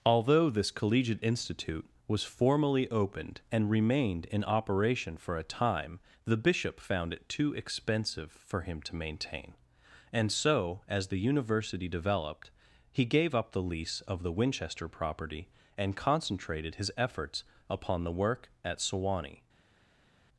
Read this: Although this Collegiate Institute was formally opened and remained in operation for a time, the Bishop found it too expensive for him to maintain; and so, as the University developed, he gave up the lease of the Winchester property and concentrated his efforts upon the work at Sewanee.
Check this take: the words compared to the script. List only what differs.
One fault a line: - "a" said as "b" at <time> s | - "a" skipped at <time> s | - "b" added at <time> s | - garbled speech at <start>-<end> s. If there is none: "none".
none